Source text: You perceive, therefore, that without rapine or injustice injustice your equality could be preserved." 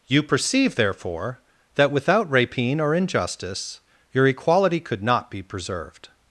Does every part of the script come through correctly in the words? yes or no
no